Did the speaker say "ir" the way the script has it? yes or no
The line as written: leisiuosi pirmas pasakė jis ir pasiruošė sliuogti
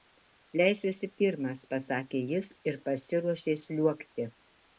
yes